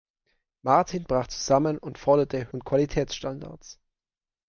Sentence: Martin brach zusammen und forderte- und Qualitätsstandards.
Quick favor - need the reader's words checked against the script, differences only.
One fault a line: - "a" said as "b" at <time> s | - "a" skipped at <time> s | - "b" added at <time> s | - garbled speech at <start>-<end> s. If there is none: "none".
none